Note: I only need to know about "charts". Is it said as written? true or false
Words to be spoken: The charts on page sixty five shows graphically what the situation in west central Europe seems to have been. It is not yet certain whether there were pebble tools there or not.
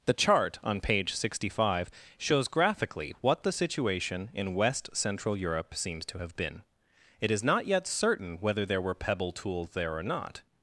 false